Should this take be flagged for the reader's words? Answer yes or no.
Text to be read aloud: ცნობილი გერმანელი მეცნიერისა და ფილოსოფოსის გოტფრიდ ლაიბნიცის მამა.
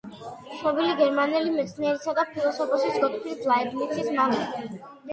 no